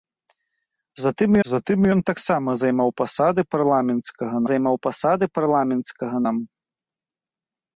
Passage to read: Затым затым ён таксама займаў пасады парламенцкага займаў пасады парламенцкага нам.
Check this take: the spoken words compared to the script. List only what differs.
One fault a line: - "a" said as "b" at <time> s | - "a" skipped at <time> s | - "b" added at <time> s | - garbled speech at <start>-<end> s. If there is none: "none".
none